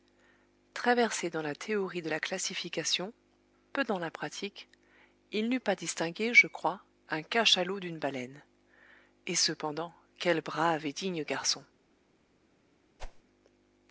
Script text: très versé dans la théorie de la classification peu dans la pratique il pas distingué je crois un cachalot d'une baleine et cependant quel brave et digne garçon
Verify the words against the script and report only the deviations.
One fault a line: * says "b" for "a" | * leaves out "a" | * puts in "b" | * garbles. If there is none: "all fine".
* puts in "n'eût"